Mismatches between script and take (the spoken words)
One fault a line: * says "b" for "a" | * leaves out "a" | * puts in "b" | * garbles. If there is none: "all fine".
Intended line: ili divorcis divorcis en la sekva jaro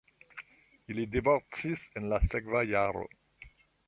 * leaves out "divorcis"